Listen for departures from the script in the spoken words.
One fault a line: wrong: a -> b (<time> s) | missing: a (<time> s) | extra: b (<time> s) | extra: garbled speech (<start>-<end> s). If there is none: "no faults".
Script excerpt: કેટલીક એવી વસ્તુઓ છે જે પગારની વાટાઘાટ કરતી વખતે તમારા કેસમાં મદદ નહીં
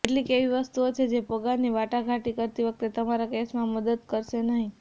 extra: કરશે (4.1 s)